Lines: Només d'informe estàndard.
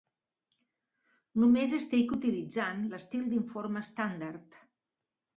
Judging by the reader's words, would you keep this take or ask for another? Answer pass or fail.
fail